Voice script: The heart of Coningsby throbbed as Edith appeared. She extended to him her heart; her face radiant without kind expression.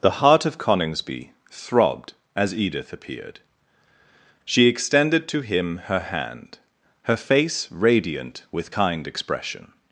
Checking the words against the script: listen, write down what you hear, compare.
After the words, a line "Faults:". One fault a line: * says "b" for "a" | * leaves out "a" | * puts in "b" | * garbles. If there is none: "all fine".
The heart of Coningsby throbbed as Edith appeared. She extended to him her hand; her face radiant with kind expression.
Faults:
* says "hand" for "heart"
* says "with" for "without"